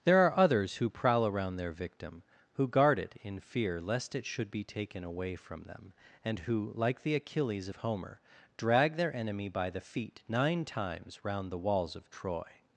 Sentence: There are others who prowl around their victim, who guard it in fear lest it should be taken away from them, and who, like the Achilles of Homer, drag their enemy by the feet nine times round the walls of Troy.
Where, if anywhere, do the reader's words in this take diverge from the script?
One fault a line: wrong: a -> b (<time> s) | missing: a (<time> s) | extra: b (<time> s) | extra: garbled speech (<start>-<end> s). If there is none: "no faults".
no faults